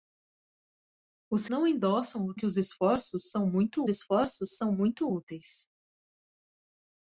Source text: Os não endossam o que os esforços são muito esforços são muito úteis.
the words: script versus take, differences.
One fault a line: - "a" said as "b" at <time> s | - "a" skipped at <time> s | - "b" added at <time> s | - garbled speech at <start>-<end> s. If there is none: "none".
none